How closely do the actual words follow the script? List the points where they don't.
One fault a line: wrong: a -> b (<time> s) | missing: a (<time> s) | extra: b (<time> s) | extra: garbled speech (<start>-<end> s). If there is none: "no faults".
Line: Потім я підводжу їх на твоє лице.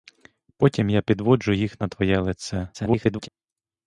extra: garbled speech (2.7-3.3 s)